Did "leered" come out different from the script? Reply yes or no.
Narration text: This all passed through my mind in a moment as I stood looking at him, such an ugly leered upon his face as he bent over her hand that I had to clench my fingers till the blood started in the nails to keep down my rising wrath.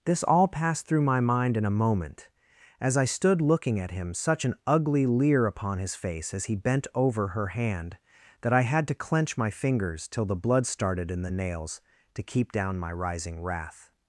yes